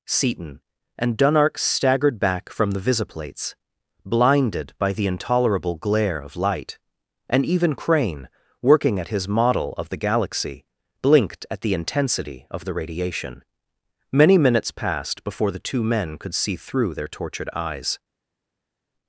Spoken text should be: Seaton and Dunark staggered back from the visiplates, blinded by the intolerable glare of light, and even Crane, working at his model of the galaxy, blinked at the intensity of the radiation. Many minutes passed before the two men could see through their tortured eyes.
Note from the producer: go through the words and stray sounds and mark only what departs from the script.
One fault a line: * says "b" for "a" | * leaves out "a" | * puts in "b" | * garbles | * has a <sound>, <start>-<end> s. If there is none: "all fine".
all fine